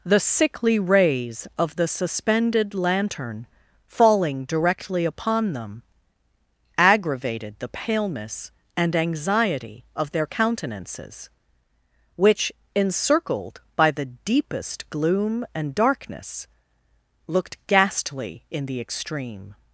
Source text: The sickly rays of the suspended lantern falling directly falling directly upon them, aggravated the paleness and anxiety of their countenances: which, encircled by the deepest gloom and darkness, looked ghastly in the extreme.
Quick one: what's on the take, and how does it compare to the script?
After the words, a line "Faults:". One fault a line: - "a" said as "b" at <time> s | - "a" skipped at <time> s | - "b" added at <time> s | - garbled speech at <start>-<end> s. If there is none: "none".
The sickly rays of the suspended lantern falling directly upon them, aggravated the paleness and anxiety of their countenances: which, encircled by the deepest gloom and darkness, looked ghastly in the extreme.
Faults:
- "falling directly" skipped at 5.0 s